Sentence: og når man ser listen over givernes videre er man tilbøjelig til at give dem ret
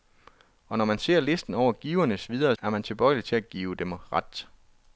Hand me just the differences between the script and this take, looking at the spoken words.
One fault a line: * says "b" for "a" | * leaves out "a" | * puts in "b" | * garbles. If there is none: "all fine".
all fine